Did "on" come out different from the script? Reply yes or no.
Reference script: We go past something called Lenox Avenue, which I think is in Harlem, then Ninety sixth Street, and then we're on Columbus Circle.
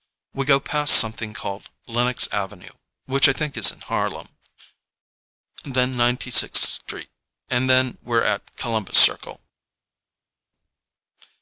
yes